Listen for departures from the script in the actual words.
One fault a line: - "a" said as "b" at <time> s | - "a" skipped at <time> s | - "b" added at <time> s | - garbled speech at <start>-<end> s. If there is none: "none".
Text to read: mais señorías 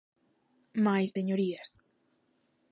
none